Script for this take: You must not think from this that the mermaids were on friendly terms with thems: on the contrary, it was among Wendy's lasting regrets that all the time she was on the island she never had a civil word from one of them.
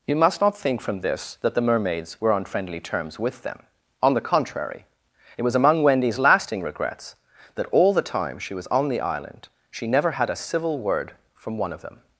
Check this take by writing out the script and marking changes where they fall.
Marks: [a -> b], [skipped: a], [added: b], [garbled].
You must not think from this that the mermaids were on friendly terms with [thems: -> them] on the contrary, it was among Wendy's lasting regrets that all the time she was on the island she never had a civil word from one of them.